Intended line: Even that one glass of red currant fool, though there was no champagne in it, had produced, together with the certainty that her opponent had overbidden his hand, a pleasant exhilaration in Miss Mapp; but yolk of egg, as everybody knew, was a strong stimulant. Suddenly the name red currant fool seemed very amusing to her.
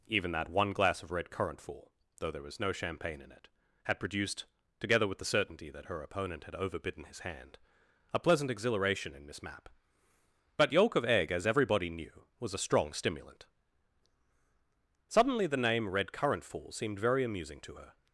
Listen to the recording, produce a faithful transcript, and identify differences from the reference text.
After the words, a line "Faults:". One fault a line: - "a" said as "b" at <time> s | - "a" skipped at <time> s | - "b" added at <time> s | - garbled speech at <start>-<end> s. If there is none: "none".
Even that one glass of red currant fool, though there was no champagne in it, had produced, together with the certainty that her opponent had overbidden his hand, a pleasant exhilaration in Miss Mapp; but yolk of egg, as everybody knew, was a strong stimulant. Suddenly the name red currant fool seemed very amusing to her.
Faults:
none